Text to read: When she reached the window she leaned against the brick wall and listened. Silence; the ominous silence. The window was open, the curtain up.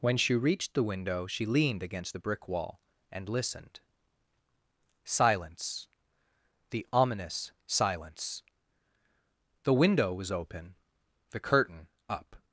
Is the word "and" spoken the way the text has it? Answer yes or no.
yes